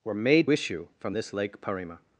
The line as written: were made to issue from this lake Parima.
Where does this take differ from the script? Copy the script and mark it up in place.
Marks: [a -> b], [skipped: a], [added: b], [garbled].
were made [skipped: to] issue from this lake Parima.